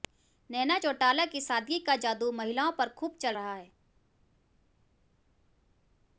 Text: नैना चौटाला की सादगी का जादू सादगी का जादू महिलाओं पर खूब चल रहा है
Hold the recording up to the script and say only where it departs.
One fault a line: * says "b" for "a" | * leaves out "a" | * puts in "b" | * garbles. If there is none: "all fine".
* leaves out "सादगी का जादू"